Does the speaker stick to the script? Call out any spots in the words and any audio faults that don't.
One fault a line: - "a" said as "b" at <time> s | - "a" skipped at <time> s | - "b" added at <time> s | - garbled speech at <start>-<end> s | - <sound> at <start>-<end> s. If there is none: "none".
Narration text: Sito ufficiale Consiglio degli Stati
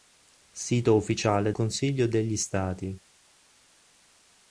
none